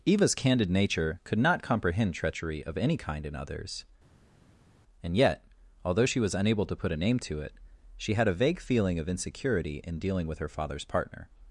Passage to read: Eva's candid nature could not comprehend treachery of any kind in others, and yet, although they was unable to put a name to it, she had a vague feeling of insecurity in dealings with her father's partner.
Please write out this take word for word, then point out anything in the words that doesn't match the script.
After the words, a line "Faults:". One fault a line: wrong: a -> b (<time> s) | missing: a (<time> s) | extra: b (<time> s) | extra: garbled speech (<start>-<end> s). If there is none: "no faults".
Eva's candid nature could not comprehend treachery of any kind in others, and yet, although she was unable to put a name to it, she had a vague feeling of insecurity in dealing with her father's partner.
Faults:
wrong: they -> she (6.0 s)
wrong: dealings -> dealing (10.0 s)